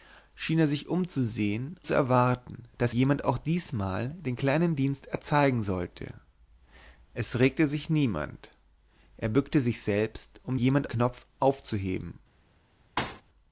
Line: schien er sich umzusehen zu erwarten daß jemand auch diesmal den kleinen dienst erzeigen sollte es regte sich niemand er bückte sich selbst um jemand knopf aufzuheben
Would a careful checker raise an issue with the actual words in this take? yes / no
no